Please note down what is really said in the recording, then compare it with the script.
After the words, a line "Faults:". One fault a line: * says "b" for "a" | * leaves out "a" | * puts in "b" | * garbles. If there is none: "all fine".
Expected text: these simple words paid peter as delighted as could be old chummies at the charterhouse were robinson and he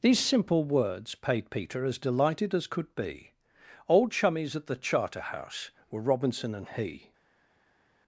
these simple words paid peter as delighted as could be old chummies at the charterhouse were robinson and he
Faults:
all fine